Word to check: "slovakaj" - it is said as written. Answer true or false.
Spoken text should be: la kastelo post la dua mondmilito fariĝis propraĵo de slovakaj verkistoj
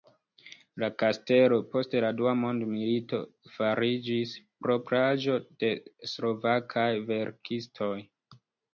true